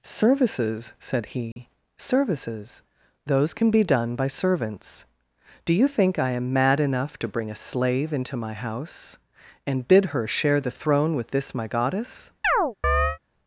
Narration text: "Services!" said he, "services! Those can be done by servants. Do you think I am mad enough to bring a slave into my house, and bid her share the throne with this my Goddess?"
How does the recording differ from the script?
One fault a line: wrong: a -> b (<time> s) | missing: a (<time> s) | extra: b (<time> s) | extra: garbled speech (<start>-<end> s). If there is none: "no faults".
no faults